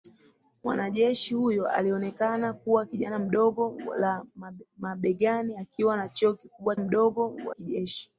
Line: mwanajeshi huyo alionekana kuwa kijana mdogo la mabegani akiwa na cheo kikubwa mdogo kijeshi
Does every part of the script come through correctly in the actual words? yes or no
yes